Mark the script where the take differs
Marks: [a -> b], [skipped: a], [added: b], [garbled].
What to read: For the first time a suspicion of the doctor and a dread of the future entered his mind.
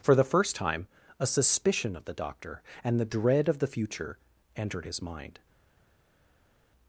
For the first time a suspicion of the doctor and [a -> the] dread of the future entered his mind.